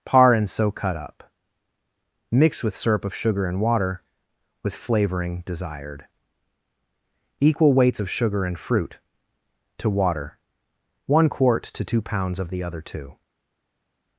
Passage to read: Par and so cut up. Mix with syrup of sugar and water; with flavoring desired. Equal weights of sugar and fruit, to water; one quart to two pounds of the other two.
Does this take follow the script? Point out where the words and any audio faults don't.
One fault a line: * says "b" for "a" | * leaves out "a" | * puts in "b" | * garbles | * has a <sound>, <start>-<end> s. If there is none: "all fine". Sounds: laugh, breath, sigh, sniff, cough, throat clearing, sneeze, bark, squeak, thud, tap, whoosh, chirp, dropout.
all fine